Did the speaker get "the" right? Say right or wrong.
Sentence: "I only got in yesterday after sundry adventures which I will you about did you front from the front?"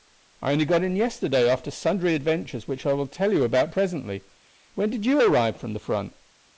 right